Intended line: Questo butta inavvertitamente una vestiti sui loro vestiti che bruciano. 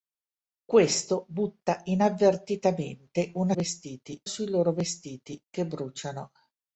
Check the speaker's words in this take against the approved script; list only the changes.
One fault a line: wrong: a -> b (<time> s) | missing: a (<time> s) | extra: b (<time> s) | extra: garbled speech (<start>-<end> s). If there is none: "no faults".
no faults